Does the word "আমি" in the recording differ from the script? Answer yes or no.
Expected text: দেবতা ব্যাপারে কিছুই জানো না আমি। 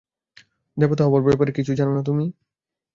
yes